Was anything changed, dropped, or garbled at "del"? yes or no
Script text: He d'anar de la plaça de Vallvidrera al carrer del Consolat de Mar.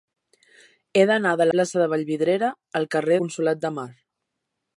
yes